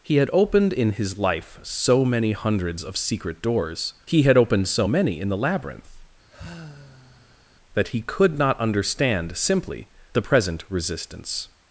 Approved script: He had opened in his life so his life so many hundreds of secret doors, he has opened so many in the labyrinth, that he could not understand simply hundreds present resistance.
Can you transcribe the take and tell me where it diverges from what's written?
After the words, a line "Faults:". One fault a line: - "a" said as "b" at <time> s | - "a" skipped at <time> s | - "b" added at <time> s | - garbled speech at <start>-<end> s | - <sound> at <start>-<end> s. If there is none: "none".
He had opened in his life so many hundreds of secret doors, he had opened so many in the labyrinth, that he could not understand simply the present resistance.
Faults:
- "his life so" skipped at 2.0 s
- "has" said as "had" at 4.2 s
- sigh at 6.3-7.5 s
- "hundreds" said as "the" at 10.1 s